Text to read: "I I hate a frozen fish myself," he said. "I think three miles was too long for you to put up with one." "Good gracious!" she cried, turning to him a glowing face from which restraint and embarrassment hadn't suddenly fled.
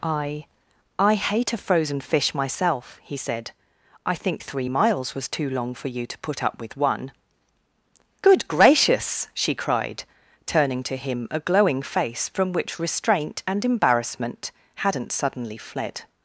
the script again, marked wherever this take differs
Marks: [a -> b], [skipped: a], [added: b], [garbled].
"I I hate a frozen fish myself," he said. "I think three miles was too long for you to put up with one." "Good gracious!" she cried, turning to him a glowing face from which restraint and embarrassment hadn't suddenly fled.